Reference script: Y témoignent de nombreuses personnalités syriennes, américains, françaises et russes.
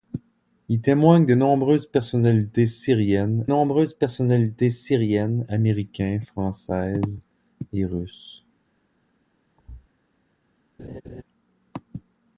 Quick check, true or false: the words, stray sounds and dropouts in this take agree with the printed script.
false